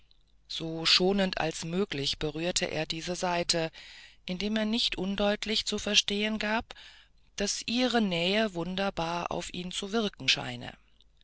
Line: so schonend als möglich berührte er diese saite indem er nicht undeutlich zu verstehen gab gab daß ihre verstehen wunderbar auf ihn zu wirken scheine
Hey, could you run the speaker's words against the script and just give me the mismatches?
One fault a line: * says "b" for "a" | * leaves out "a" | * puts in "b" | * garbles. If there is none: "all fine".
* leaves out "gab"
* says "nähe" for "verstehen"